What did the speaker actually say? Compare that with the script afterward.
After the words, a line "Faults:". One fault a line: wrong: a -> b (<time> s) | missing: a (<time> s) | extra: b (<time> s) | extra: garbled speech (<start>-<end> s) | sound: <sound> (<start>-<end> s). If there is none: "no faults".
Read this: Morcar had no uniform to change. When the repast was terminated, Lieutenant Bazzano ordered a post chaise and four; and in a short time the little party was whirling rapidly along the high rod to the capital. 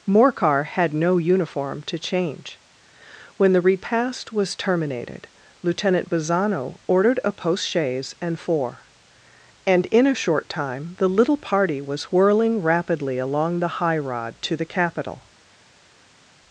Morcar had no uniform to change. When the repast was terminated, Lieutenant Bazzano ordered a post chaise and four; and in a short time the little party was whirling rapidly along the high rod to the capital.
Faults:
no faults